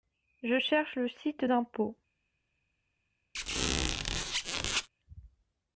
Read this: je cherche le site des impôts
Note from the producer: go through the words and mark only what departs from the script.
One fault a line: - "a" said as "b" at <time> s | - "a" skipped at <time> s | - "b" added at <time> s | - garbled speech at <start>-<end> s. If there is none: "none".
- "des" skipped at 1.4 s